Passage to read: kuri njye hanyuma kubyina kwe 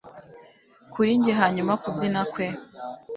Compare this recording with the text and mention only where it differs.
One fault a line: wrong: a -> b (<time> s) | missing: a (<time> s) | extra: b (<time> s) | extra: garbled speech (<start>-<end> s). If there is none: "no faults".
no faults